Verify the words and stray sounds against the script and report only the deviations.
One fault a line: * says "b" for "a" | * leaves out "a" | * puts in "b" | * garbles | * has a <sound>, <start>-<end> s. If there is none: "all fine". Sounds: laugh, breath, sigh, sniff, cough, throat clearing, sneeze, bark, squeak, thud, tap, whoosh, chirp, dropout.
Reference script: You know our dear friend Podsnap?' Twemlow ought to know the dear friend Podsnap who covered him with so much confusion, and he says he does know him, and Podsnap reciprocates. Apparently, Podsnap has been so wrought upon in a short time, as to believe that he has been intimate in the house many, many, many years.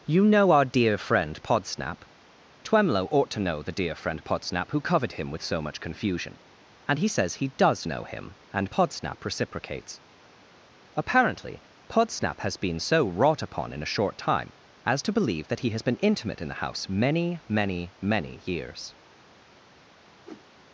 * has a whoosh, 20.2-20.5 s